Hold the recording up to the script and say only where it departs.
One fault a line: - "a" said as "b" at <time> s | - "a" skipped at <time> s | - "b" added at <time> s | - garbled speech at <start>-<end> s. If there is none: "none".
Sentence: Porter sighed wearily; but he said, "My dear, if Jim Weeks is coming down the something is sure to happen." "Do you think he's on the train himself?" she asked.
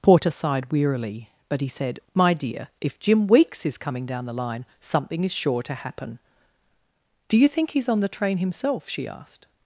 - "line" added at 4.3 s